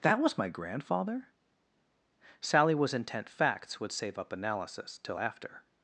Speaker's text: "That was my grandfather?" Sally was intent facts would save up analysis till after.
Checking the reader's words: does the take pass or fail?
pass